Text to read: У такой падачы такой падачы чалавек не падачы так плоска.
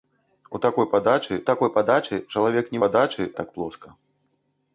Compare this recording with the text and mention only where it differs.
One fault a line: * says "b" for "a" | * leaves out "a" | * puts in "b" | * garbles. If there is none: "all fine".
all fine